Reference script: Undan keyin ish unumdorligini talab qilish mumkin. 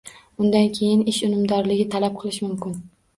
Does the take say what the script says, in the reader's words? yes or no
yes